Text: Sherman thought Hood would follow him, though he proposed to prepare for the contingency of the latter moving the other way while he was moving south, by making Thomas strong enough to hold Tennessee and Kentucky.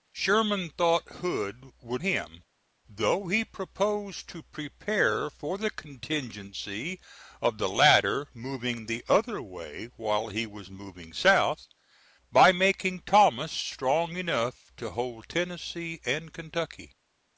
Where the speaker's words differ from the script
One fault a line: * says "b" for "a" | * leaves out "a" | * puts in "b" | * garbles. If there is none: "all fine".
* leaves out "follow"